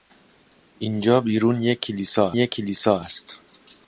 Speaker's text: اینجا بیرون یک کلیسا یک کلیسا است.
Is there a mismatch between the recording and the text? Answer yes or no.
no